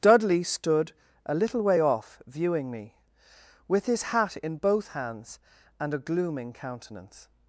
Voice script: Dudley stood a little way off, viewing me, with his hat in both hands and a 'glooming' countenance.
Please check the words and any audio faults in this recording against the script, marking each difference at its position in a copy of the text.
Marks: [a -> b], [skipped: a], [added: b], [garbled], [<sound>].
Dudley stood a little way off, viewing me, with his hat in both hands and a 'glooming' countenance.